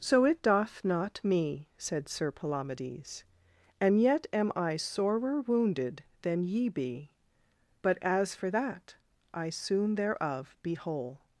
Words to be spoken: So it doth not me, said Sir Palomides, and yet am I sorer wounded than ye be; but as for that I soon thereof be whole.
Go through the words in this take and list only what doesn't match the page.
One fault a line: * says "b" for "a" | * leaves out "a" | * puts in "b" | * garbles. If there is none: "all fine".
all fine